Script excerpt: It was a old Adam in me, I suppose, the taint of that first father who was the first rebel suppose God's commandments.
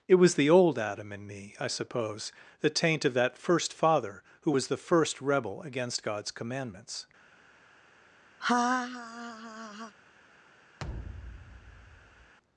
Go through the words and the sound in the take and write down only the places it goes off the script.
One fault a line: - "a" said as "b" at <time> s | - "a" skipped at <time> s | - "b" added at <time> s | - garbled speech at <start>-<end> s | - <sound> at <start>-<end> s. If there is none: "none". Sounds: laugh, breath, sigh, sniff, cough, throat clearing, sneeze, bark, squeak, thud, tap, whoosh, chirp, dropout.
- "a" said as "the" at 0.3 s
- "suppose" said as "against" at 5.6 s
- laugh at 8.4-10.0 s
- thud at 10.8-12.3 s